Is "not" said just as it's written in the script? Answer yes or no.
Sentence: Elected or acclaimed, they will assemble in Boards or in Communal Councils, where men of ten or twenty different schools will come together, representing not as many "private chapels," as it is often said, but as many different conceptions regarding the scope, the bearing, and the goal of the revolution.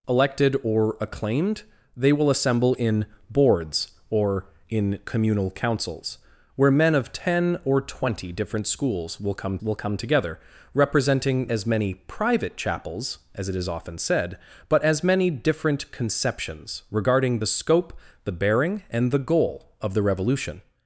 no